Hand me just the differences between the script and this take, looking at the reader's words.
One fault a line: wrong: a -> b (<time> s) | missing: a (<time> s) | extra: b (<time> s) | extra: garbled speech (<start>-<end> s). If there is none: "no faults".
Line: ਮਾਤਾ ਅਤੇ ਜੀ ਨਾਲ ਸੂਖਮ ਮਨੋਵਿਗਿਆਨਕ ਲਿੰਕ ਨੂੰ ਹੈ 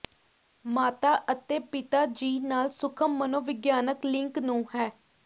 extra: ਪਿਤਾ (1.7 s)